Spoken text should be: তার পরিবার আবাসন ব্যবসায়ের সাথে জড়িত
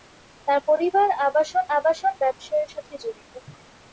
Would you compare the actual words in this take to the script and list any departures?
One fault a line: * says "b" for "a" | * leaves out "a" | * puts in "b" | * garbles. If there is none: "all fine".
* puts in "আবাসন"